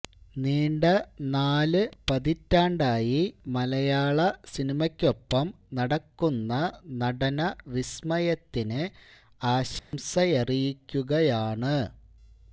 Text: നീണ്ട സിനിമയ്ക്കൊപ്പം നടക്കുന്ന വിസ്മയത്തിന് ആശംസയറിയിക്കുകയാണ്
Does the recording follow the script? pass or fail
fail